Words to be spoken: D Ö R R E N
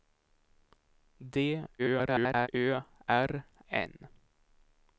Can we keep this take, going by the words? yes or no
no